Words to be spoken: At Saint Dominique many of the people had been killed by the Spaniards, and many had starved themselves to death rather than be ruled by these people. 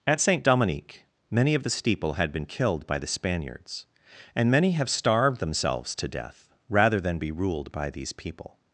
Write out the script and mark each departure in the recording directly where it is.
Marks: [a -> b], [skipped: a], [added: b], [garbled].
At Saint Dominique many of the [people -> steeple] had been killed by the Spaniards, and many [had -> have] starved themselves to death rather than be ruled by these people.